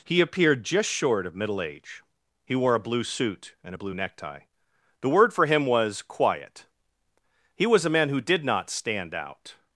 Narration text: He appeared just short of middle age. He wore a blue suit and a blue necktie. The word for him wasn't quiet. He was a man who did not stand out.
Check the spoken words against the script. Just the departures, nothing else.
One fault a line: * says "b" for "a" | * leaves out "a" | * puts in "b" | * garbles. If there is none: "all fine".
* says "was" for "wasn't"